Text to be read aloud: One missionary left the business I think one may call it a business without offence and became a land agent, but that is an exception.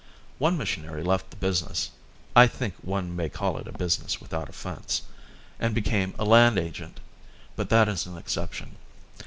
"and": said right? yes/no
yes